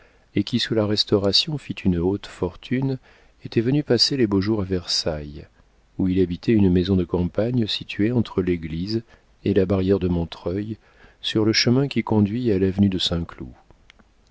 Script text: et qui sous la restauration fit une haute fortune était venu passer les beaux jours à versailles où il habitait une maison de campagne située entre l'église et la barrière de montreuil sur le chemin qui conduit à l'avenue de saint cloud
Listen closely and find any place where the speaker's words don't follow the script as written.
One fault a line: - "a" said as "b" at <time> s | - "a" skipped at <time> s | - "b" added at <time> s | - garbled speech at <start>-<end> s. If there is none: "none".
none